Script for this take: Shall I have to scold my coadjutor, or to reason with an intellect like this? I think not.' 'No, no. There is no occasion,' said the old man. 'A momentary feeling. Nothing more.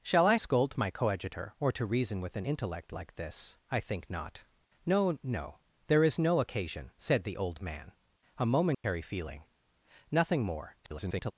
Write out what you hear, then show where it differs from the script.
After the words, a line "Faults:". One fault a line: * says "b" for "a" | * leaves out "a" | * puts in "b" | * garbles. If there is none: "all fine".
Shall I scold my coadjutor, or to reason with an intellect like this? I think not.' 'No, no. There is no occasion,' said the old man. 'A momentary feeling. Nothing more. [garbled]
Faults:
* leaves out "have to"
* garbles